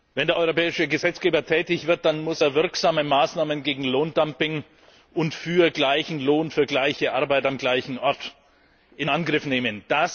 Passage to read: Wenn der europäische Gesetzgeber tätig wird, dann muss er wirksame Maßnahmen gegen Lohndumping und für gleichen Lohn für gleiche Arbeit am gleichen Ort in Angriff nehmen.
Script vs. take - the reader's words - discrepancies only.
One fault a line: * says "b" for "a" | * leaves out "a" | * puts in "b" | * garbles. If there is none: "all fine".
all fine